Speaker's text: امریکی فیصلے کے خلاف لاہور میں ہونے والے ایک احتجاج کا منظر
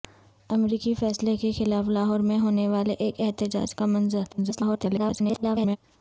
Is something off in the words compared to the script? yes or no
yes